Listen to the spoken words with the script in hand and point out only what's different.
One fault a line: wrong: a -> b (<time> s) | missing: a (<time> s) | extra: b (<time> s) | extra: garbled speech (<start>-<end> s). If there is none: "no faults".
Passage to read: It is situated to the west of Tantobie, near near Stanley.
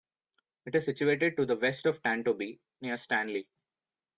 missing: near (3.0 s)